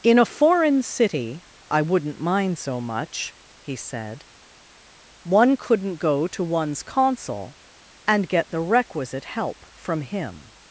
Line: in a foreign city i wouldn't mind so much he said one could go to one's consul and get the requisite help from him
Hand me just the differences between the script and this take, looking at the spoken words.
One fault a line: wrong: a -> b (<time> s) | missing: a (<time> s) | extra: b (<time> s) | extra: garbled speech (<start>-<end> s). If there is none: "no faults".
wrong: could -> couldn't (5.6 s)